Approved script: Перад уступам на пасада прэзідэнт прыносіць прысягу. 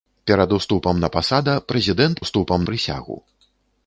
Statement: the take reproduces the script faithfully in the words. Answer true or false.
false